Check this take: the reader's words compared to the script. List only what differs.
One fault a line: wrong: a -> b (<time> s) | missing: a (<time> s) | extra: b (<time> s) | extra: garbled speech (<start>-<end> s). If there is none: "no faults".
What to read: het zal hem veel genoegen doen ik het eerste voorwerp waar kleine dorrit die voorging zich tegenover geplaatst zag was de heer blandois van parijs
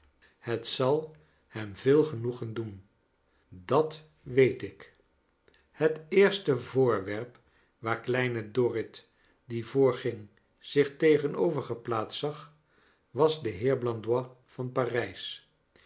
extra: dat weet (3.5 s)